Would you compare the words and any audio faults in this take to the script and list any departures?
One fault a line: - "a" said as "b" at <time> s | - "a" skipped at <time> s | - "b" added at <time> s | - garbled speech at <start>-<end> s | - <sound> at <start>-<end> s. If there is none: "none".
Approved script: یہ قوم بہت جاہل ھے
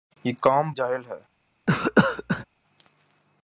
- "بہت" skipped at 0.7 s
- cough at 1.7-2.5 s